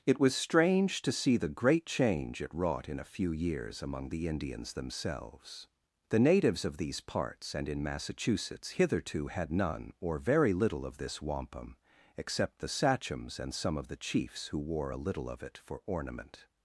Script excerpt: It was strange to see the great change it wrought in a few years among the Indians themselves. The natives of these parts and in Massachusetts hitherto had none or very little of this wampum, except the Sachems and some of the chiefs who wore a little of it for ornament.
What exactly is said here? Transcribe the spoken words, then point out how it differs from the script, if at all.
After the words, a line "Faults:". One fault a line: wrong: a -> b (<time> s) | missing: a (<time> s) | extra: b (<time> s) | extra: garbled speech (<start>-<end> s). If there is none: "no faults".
It was strange to see the great change it wrought in a few years among the Indians themselves. The natives of these parts and in Massachusetts hitherto had none or very little of this wampum, except the Sachems and some of the chiefs who wore a little of it for ornament.
Faults:
no faults